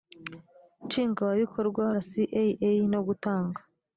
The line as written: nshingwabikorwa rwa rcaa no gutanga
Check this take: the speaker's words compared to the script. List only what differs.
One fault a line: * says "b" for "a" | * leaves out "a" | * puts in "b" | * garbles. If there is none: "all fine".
* leaves out "rwa"